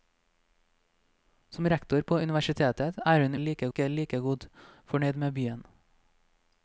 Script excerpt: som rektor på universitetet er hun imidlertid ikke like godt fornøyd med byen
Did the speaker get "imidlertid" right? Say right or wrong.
wrong